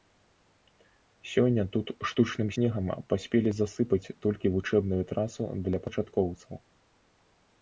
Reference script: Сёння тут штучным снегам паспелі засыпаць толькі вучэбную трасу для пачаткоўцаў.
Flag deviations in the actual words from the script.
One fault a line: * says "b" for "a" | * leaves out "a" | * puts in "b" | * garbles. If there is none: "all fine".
all fine